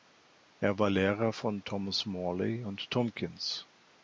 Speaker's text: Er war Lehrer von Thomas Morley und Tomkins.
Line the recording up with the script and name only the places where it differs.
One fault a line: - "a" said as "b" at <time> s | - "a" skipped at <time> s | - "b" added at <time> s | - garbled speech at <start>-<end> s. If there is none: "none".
none